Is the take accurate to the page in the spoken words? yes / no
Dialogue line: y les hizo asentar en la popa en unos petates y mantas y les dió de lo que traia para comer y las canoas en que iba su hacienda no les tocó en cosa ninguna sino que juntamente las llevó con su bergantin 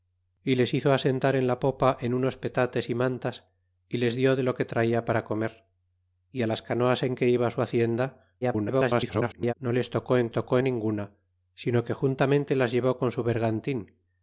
no